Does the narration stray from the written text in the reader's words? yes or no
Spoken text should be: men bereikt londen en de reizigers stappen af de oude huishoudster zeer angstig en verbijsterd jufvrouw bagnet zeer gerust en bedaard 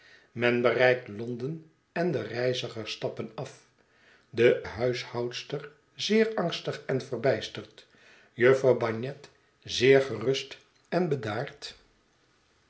yes